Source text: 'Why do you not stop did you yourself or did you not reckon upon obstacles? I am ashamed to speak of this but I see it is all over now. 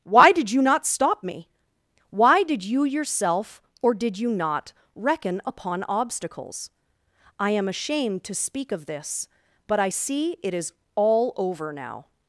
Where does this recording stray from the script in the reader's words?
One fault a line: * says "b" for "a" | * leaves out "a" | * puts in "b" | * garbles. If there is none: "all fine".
* says "did" for "do"
* puts in "me Why"